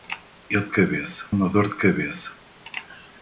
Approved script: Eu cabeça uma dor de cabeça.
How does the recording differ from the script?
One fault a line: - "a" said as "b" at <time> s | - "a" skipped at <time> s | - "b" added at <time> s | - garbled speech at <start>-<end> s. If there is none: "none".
none